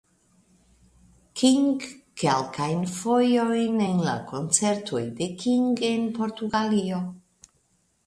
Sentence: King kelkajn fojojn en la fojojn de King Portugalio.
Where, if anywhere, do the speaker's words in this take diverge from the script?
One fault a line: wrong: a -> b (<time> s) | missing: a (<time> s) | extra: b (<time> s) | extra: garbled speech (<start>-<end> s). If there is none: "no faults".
wrong: fojojn -> koncertoj (4.3 s)
extra: en (5.9 s)